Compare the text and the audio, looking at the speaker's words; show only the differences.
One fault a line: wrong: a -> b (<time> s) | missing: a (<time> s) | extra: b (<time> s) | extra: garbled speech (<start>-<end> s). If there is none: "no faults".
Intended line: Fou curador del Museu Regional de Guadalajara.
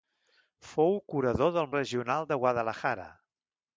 missing: Museu (1.7 s)